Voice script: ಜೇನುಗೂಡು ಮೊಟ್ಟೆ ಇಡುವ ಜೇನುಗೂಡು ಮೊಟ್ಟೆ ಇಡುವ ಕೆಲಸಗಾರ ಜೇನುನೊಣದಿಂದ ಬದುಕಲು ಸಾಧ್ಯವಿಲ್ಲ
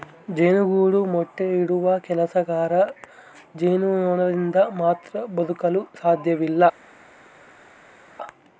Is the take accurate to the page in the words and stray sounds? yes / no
no